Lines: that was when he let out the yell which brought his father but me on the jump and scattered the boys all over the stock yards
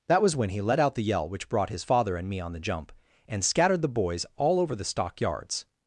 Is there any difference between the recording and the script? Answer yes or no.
yes